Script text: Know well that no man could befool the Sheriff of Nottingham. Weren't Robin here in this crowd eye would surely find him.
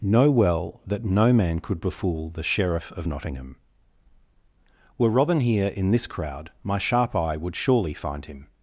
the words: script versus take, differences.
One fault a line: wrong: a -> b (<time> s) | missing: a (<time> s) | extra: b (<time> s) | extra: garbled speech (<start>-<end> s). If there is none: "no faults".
wrong: Weren't -> Were (5.0 s)
extra: my sharp (6.6 s)